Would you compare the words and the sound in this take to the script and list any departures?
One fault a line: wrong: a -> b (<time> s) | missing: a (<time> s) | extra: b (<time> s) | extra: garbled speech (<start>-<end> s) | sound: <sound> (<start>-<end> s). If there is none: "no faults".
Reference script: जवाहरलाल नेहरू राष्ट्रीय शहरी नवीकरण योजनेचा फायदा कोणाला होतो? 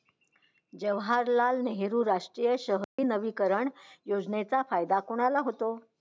sound: dropout (2.8-3.0 s)